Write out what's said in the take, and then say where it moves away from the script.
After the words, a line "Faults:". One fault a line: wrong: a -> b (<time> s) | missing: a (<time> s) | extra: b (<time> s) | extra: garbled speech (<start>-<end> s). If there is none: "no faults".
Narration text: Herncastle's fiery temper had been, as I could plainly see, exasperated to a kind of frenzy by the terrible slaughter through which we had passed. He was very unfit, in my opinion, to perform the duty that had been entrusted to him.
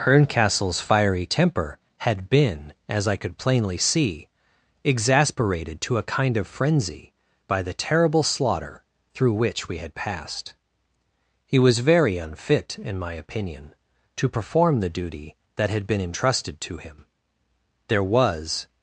Herncastle's fiery temper had been, as I could plainly see, exasperated to a kind of frenzy by the terrible slaughter through which we had passed. He was very unfit, in my opinion, to perform the duty that had been entrusted to him. There was
Faults:
extra: There was (17.9 s)